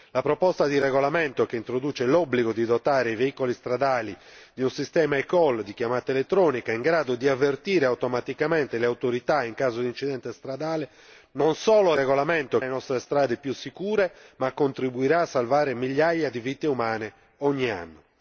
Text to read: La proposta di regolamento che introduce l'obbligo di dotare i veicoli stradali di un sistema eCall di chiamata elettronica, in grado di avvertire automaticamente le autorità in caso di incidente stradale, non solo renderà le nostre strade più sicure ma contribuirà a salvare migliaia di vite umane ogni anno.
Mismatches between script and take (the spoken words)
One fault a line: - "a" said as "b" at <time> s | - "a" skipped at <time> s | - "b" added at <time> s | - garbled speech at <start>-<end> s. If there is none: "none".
- "renderà" said as "regolamento" at 11.9 s